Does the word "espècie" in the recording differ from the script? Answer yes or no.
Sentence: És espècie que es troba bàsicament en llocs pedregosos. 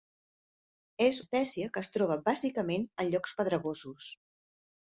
no